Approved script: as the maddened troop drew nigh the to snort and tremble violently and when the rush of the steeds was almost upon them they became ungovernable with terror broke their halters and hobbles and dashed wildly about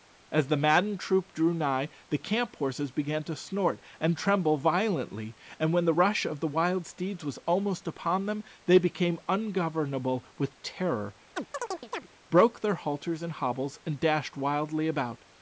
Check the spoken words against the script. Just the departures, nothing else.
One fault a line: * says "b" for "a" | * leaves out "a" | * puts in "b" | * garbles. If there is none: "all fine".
* puts in "camp horses began"
* puts in "wild"